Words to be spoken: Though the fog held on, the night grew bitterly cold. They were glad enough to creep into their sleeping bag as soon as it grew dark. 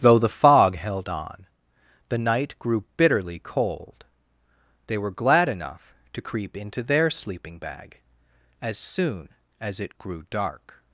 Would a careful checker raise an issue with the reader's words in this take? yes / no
no